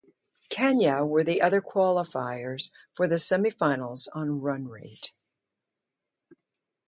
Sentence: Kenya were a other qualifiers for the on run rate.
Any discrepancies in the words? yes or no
yes